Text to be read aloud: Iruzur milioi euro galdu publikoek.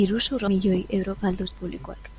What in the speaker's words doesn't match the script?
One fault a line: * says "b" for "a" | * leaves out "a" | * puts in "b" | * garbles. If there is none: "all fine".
all fine